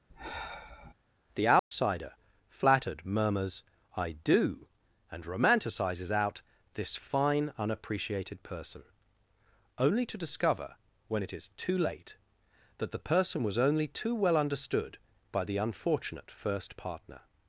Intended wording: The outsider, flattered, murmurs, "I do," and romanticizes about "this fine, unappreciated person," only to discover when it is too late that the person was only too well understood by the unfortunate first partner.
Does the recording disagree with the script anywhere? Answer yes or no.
yes